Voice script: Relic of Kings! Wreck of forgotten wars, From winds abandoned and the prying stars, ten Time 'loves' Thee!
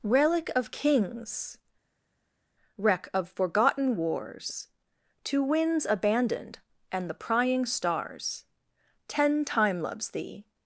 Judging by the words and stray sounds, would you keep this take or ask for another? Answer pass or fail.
fail